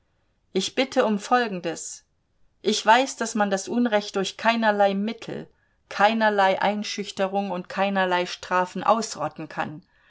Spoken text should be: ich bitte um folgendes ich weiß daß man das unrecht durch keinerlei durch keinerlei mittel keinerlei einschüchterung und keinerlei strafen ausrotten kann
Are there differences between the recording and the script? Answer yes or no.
yes